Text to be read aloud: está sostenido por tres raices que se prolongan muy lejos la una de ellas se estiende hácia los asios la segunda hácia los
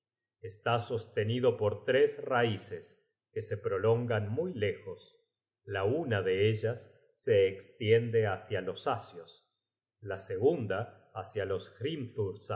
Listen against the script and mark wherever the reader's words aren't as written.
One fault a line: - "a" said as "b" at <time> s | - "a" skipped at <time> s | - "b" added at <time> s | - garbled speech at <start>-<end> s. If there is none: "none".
none